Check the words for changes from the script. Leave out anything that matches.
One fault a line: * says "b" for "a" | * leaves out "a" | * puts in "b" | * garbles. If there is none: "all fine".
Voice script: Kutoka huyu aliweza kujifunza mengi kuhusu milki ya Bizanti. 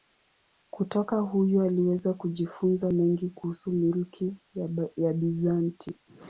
all fine